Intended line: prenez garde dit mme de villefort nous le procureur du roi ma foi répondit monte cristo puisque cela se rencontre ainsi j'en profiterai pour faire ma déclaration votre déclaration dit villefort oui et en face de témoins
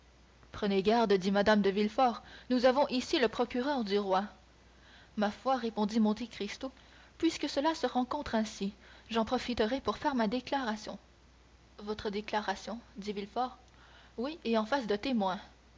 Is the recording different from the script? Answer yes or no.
yes